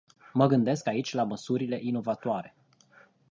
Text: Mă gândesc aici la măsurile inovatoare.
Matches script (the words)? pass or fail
pass